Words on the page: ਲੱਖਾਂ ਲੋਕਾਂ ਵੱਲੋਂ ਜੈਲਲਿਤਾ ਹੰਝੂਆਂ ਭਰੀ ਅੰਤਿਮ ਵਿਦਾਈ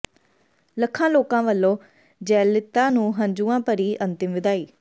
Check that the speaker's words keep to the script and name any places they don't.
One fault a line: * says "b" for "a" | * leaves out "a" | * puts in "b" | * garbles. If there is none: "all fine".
* puts in "ਨੂੰ"